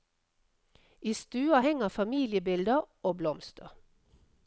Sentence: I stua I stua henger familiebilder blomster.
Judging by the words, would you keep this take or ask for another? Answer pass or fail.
fail